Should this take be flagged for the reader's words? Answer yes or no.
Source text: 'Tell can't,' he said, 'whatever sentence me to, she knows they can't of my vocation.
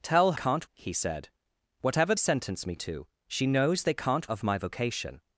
no